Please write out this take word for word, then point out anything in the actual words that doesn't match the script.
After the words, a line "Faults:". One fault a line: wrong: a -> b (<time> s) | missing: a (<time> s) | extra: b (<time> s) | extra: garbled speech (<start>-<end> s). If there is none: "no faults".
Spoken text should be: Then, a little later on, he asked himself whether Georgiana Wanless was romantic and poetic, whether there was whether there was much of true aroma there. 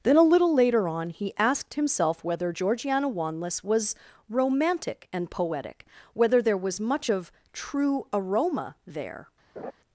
Then, a little later on, he asked himself whether Georgiana Wanless was romantic and poetic, whether there was much of true aroma there.
Faults:
missing: whether there was (6.8 s)